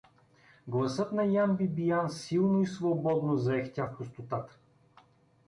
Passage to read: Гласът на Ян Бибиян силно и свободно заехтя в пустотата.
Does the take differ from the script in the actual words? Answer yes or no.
no